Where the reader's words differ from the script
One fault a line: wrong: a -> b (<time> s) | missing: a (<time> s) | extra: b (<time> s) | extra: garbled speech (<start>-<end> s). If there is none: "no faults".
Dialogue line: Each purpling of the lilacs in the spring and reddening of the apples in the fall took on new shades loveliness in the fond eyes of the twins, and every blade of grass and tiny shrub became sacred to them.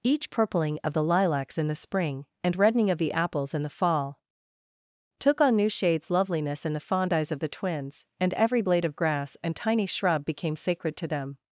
no faults